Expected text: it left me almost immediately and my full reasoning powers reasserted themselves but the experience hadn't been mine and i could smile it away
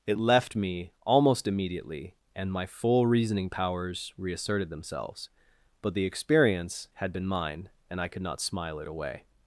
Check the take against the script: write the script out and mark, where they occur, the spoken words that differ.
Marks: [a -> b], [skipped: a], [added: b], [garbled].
it left me almost immediately and my full reasoning powers reasserted themselves but the experience [hadn't -> had] been mine and i could [added: not] smile it away